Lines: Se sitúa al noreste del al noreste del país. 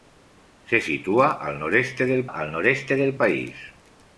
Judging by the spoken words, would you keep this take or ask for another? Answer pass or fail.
pass